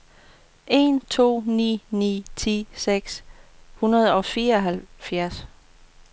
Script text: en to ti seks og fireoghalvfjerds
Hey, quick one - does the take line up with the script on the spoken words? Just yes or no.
no